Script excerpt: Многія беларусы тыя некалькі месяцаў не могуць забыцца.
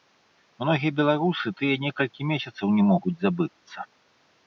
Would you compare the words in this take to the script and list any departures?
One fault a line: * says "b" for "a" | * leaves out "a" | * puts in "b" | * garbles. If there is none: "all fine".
all fine